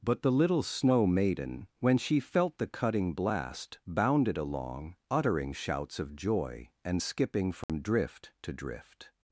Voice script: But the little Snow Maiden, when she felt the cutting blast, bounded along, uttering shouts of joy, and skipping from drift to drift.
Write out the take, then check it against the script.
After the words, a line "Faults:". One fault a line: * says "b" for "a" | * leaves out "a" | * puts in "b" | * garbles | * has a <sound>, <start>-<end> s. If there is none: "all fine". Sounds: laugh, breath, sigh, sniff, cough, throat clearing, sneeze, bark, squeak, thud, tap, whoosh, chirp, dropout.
But the little Snow Maiden, when she felt the cutting blast, bounded along, uttering shouts of joy, and skipping from drift to drift.
Faults:
* has a dropout, 7.6-7.7 s